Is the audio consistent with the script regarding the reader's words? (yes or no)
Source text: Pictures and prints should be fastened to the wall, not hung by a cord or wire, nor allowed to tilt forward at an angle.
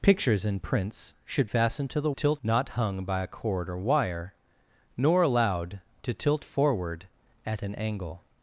no